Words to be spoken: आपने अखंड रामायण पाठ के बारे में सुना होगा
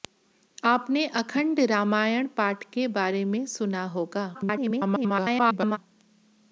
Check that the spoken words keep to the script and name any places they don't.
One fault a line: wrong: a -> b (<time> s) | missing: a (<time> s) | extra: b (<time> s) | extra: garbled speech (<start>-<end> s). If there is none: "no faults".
extra: garbled speech (4.3-5.8 s)